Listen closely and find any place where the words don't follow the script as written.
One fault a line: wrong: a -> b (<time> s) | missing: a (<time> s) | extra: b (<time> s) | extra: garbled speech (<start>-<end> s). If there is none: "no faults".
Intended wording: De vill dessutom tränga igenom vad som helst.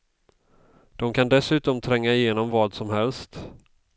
wrong: vill -> kan (1.1 s)